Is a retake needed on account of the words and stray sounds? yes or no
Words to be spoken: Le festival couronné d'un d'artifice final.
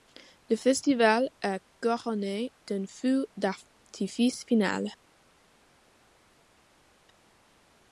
yes